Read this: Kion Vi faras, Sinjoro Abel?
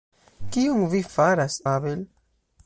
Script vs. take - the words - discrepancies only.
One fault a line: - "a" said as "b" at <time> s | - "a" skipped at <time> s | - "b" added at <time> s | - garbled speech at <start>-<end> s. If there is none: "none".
- "Sinjoro" skipped at 1.6 s